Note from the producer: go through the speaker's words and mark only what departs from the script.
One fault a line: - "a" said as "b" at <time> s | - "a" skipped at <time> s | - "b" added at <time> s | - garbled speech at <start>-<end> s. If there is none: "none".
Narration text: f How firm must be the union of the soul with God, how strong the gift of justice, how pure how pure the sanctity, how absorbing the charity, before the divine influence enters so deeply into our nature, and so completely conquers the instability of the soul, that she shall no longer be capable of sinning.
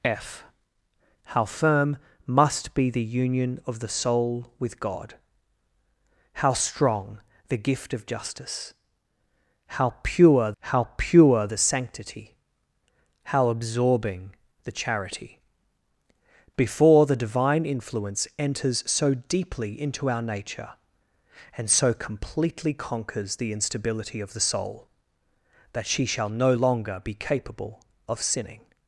none